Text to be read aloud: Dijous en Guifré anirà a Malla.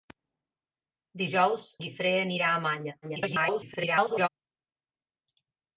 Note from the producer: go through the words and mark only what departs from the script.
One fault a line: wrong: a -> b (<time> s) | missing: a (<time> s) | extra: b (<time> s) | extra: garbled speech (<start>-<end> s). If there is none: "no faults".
missing: en (1.6 s)
extra: garbled speech (3.0-4.3 s)